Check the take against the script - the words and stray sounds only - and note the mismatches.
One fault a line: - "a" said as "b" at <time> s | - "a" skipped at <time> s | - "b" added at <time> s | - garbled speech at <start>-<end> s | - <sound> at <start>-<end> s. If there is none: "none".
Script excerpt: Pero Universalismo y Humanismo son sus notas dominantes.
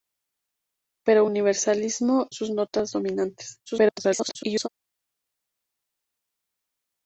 - "y Humanismo son" skipped at 2.3 s
- garbled speech at 3.7-4.7 s